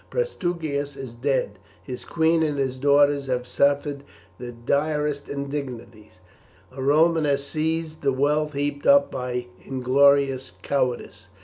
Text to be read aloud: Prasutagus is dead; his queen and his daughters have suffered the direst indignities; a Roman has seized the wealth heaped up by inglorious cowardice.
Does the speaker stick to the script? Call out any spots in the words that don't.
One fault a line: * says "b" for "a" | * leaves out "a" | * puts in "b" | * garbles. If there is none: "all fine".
all fine